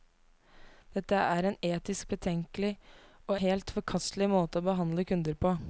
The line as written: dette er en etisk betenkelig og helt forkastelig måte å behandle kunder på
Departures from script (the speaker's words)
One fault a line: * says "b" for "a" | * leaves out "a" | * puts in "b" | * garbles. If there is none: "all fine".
all fine